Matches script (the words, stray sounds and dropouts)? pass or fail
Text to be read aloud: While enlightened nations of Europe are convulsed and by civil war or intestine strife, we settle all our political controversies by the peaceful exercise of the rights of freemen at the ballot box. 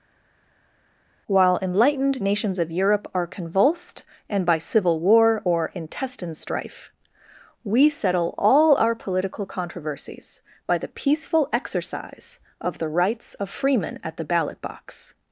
pass